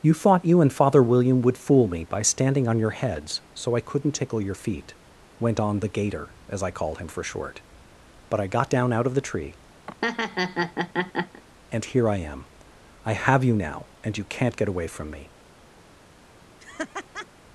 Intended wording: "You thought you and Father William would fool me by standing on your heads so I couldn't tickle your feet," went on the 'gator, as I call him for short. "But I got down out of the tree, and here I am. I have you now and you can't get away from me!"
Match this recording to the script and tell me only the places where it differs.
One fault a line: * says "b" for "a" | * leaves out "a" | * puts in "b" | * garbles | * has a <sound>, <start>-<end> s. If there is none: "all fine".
* says "called" for "call"
* has a laugh, 9.9-11.4 s
* has a laugh, 16.6-17.3 s